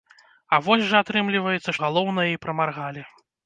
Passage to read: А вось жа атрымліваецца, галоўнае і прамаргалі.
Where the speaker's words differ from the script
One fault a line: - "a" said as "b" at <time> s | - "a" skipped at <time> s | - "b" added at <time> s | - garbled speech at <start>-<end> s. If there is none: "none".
none